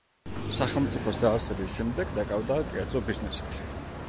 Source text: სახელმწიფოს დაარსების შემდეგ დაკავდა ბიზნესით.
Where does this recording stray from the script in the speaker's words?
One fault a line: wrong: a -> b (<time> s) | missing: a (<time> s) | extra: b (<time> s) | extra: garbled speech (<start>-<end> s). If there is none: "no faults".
extra: კერძო (2.7 s)